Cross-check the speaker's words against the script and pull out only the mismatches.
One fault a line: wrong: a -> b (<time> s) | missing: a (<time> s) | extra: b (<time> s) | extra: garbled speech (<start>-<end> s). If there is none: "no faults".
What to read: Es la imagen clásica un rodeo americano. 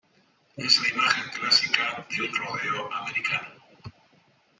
extra: de (2.1 s)